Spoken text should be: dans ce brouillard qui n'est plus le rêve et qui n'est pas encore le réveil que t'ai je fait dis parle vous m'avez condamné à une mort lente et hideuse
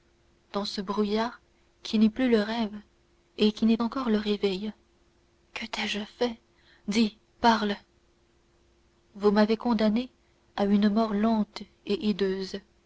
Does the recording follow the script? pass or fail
fail